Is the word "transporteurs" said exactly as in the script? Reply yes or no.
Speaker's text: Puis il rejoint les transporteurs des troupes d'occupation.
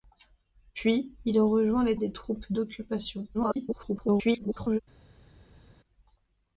no